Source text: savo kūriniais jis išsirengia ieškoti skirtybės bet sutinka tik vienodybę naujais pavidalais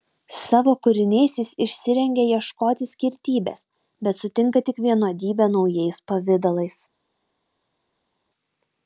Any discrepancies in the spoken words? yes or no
no